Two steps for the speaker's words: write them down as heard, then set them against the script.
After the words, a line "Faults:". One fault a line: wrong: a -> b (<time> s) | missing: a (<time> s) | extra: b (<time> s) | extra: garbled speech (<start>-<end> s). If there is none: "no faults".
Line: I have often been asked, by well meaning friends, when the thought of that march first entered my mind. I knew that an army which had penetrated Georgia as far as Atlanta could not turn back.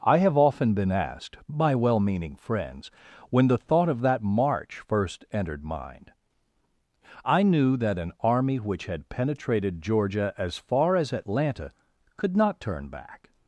I have often been asked, by well meaning friends, when the thought of that march first entered mind. I knew that an army which had penetrated Georgia as far as Atlanta could not turn back.
Faults:
missing: my (5.6 s)